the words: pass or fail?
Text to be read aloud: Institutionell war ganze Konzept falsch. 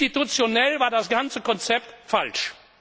fail